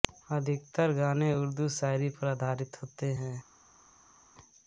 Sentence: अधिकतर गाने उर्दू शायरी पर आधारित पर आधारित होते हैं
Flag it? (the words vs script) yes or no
yes